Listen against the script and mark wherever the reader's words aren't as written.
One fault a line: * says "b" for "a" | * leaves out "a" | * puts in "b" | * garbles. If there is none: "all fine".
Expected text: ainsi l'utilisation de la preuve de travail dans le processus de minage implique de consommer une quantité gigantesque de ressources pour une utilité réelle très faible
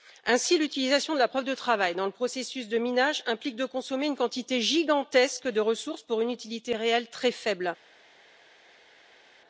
all fine